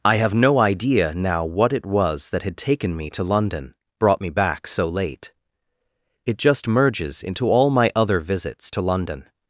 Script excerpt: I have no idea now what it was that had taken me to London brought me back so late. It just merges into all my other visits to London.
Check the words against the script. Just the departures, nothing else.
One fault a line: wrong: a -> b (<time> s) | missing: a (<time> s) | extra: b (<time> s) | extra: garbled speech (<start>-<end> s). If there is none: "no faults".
no faults